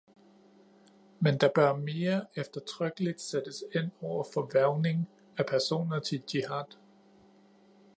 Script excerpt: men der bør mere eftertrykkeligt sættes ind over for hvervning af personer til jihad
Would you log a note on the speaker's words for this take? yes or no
no